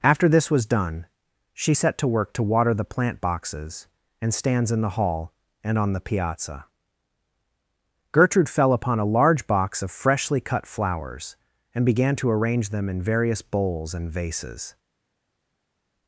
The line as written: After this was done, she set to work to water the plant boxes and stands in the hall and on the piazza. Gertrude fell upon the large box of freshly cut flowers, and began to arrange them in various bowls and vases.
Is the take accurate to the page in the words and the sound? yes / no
no